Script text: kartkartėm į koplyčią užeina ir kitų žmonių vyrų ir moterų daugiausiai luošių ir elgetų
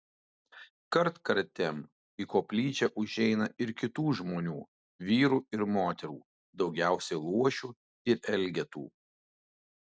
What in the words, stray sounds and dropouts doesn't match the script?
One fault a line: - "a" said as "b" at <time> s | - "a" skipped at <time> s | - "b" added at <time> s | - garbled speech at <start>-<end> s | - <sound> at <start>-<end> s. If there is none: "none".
none